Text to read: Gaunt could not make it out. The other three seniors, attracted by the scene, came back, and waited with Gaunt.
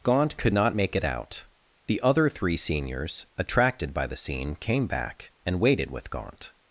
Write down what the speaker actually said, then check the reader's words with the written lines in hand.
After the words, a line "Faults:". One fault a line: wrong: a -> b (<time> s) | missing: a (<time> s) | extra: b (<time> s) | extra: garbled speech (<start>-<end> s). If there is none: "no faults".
Gaunt could not make it out. The other three seniors, attracted by the scene, came back, and waited with Gaunt.
Faults:
no faults